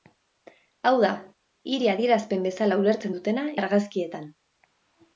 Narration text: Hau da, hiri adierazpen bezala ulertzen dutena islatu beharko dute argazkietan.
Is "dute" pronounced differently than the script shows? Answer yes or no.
yes